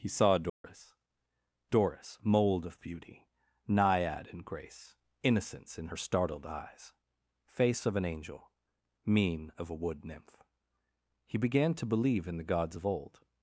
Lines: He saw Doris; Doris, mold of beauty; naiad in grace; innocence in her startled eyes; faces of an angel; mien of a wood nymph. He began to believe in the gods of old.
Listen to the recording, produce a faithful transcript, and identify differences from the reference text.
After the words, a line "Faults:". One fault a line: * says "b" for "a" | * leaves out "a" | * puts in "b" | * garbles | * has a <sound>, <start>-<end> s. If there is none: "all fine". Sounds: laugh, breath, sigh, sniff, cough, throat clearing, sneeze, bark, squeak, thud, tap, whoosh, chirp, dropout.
He saw Doris; Doris, mold of beauty; naiad in grace; innocence in her startled eyes; face of an angel; mien of a wood nymph. He began to believe in the gods of old.
Faults:
* has a dropout, 0.5-0.6 s
* says "face" for "faces"